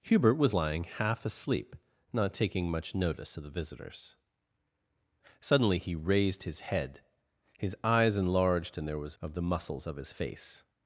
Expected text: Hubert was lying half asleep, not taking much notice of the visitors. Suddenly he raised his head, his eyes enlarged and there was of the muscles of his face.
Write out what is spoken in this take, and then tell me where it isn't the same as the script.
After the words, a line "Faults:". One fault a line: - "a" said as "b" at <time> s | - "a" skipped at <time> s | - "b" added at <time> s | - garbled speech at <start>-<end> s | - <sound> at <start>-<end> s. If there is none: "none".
Hubert was lying half asleep, not taking much notice of the visitors. Suddenly he raised his head, his eyes enlarged and there was of the muscles of his face.
Faults:
none